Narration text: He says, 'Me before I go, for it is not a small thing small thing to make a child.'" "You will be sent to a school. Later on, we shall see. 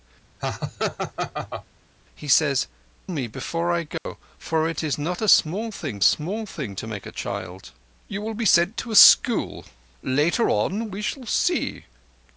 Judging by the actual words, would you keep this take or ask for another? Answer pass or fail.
pass